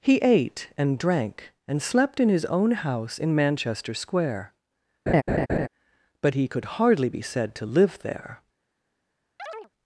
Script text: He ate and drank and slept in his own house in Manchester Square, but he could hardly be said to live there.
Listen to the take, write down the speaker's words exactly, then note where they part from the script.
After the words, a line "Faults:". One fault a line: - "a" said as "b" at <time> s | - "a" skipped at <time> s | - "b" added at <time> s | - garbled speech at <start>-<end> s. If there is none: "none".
He ate and drank and slept in his own house in Manchester Square, but he could hardly be said to live there.
Faults:
none